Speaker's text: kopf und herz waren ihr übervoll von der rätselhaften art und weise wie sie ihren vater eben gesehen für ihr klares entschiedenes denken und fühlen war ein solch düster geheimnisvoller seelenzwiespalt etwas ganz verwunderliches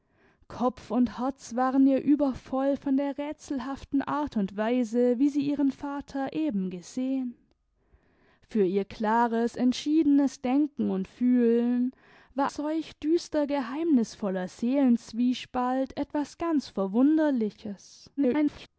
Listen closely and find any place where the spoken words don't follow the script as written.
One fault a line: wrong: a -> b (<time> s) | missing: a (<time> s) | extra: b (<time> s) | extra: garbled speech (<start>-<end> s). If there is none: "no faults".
missing: ein (12.5 s)
extra: garbled speech (18.2-18.7 s)